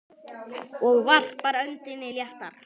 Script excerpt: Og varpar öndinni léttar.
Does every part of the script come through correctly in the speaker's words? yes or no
yes